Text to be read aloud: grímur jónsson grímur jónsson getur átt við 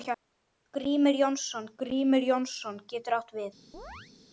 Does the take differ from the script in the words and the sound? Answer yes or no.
yes